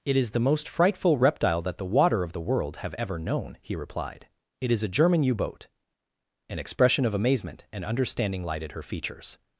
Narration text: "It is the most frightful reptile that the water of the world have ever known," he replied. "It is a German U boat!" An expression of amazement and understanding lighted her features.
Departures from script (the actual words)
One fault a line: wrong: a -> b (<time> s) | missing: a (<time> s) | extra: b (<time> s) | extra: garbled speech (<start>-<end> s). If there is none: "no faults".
no faults